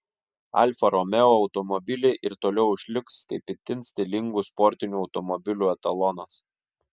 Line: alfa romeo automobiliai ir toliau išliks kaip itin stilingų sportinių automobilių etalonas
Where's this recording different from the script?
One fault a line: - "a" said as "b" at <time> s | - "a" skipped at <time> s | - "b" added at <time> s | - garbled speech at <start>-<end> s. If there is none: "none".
none